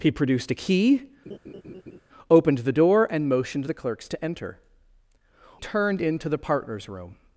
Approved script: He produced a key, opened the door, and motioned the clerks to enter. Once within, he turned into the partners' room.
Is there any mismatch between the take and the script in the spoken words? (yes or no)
yes